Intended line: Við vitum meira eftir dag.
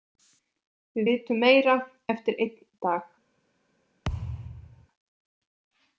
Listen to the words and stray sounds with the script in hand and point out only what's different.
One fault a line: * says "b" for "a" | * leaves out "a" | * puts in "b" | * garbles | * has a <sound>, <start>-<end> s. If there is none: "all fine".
* puts in "einn"
* has a thud, 4.0-4.9 s